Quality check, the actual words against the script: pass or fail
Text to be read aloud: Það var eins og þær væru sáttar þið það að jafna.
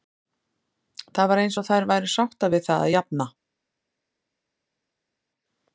fail